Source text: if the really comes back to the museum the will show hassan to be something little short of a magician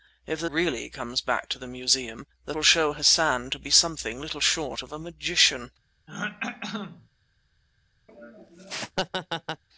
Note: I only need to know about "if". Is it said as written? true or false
true